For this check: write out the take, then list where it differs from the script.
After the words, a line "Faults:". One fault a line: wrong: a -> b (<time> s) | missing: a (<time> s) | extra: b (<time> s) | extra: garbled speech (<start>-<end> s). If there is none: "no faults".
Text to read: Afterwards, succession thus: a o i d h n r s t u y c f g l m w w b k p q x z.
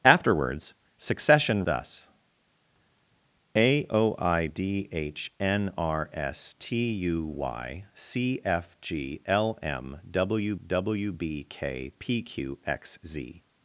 Afterwards, succession thus: a o i d h n r s t u y c f g l m w w b k p q x z.
Faults:
no faults